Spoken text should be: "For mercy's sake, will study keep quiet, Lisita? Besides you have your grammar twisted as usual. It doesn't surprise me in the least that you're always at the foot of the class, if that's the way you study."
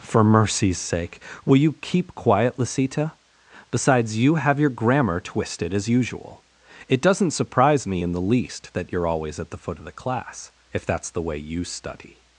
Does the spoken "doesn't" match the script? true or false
true